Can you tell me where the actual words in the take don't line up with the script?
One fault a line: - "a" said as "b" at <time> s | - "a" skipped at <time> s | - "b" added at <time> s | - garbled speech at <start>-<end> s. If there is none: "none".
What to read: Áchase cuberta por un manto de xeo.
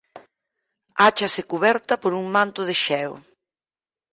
none